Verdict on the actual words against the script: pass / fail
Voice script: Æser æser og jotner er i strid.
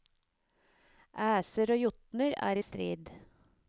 fail